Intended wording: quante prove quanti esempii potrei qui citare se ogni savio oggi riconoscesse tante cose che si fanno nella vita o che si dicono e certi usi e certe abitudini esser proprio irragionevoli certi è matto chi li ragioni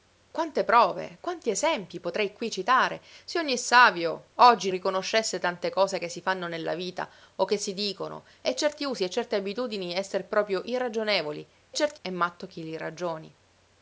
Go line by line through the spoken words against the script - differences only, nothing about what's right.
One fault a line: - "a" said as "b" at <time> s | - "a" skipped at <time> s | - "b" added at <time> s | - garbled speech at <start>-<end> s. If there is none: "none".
none